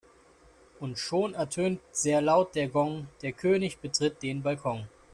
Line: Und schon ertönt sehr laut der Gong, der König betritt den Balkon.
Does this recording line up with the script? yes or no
yes